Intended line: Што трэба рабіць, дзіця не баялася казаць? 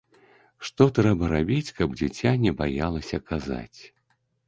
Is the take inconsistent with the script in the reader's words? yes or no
yes